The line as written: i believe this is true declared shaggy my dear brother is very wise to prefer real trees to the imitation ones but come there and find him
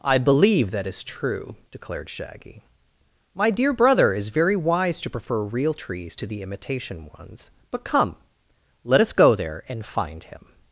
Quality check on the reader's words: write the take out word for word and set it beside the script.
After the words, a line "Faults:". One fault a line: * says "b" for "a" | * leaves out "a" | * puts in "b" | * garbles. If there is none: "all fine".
i believe that is true declared shaggy my dear brother is very wise to prefer real trees to the imitation ones but come let us go there and find him
Faults:
* says "that" for "this"
* puts in "let us go"